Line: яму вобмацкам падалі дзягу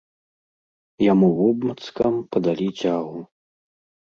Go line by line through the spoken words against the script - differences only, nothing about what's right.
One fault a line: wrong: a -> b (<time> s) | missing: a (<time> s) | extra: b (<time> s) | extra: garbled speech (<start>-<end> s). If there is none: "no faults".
no faults